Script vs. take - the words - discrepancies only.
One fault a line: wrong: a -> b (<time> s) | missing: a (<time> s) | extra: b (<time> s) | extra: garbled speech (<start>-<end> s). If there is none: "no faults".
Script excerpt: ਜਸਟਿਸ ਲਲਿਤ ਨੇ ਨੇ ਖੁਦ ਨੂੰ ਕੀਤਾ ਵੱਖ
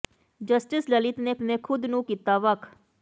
no faults